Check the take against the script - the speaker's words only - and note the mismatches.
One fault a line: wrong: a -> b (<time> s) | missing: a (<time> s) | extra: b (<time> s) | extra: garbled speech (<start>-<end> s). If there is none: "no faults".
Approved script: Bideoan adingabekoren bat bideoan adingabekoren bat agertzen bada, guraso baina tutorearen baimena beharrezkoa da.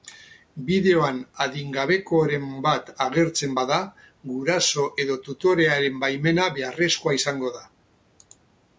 missing: bideoan adingabekoren bat (2.9 s)
wrong: baina -> edo (5.0 s)
extra: izango (7.2 s)